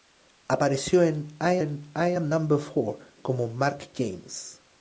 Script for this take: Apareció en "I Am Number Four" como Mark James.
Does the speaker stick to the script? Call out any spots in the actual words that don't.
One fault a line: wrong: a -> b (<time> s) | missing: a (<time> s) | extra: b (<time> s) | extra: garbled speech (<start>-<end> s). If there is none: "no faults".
extra: en I (1.6 s)